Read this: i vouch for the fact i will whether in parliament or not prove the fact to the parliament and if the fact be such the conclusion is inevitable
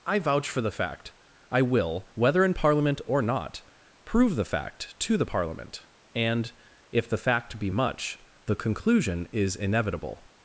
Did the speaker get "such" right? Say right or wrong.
wrong